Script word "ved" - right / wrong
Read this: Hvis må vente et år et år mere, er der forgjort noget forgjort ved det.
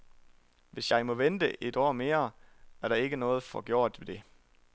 right